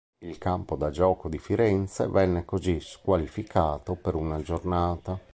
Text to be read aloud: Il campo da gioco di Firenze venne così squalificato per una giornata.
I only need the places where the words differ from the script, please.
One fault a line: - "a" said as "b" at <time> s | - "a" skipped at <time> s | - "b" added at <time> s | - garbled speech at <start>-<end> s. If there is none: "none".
none